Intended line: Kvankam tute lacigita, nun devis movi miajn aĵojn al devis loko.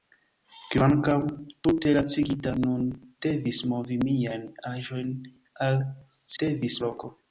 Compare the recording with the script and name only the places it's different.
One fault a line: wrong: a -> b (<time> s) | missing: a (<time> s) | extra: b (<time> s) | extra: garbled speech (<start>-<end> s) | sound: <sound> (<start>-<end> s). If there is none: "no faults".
no faults